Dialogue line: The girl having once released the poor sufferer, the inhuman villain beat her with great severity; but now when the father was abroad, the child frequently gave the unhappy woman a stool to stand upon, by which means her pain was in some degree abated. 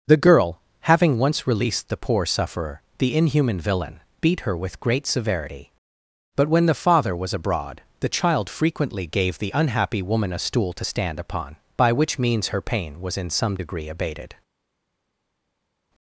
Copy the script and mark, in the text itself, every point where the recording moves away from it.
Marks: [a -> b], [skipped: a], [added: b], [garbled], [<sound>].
The girl having once released the poor sufferer, the inhuman villain beat her with great severity; but [skipped: now] when the father was abroad, the child frequently gave the unhappy woman a stool to stand upon, by which means her pain was in some degree abated.